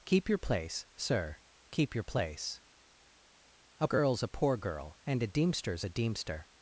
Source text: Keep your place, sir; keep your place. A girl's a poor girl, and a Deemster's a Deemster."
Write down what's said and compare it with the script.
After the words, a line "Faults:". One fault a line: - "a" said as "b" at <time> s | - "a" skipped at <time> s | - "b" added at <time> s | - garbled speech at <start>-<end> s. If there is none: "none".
Keep your place, sir; keep your place. A girl's a poor girl, and a Deemster's a Deemster."
Faults:
none